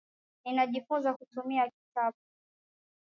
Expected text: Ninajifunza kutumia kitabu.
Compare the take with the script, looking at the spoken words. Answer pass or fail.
pass